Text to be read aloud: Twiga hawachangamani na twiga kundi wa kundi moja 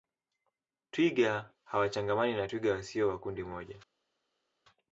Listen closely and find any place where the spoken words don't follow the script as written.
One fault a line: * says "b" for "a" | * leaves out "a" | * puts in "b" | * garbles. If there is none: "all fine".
* says "wasio" for "kundi"